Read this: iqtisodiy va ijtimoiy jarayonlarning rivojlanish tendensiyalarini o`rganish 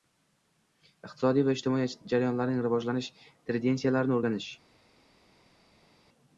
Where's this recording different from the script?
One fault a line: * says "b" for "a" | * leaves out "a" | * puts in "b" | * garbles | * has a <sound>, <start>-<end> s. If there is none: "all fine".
all fine